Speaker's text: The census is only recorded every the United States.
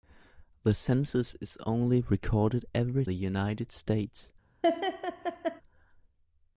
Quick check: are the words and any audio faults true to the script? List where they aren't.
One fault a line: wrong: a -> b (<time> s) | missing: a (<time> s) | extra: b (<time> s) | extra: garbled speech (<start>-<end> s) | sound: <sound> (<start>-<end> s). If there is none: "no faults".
sound: laugh (4.6-5.6 s)